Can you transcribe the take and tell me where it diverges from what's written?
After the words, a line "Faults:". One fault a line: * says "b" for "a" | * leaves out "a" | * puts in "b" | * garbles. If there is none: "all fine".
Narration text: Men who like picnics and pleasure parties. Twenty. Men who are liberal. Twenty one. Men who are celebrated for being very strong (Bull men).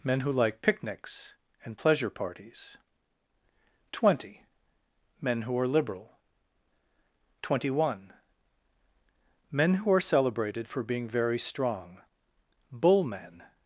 Men who like picnics and pleasure parties. Twenty. Men who are liberal. Twenty one. Men who are celebrated for being very strong (Bull men).
Faults:
all fine